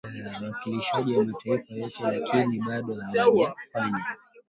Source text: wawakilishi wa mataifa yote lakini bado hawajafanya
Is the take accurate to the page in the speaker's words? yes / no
yes